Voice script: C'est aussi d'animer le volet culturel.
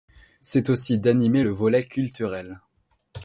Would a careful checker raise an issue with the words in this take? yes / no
no